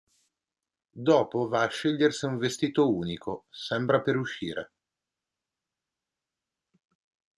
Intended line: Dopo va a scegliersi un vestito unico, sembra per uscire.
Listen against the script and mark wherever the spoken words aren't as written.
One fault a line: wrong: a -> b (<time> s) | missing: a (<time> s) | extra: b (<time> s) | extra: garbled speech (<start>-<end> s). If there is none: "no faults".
no faults